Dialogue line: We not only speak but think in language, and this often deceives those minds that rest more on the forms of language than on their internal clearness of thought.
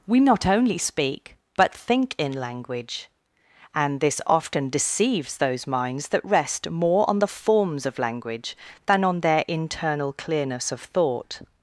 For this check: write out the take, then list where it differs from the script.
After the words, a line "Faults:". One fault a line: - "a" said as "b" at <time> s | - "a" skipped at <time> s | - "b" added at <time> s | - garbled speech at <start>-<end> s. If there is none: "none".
We not only speak but think in language, and this often deceives those minds that rest more on the forms of language than on their internal clearness of thought.
Faults:
none